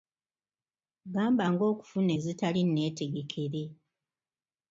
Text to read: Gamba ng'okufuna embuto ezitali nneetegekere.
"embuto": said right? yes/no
no